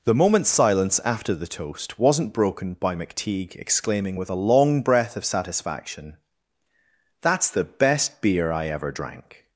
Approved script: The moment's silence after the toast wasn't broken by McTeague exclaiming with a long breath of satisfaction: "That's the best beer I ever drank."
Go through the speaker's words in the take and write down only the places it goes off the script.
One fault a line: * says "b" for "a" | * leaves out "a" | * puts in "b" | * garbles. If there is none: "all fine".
all fine